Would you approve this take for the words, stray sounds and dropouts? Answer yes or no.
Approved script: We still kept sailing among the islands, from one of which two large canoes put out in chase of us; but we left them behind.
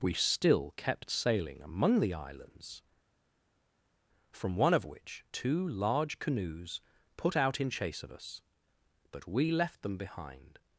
yes